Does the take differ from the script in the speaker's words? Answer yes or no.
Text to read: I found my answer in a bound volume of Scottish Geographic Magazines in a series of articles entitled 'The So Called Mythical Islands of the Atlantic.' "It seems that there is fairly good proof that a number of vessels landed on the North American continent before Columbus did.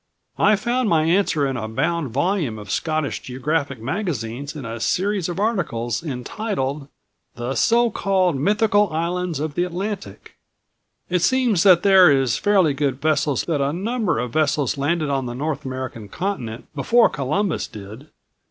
yes